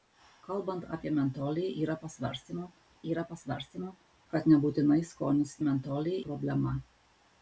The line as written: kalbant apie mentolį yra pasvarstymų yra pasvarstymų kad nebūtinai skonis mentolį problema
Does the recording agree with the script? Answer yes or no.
yes